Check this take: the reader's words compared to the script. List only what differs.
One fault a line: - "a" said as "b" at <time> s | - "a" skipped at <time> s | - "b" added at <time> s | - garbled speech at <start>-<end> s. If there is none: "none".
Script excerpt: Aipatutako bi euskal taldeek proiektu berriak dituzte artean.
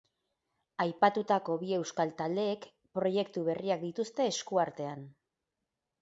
- "esku" added at 4.4 s